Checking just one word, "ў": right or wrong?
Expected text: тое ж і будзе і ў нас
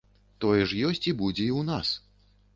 right